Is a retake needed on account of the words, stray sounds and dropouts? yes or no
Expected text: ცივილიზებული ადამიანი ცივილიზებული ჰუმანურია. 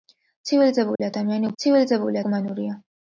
yes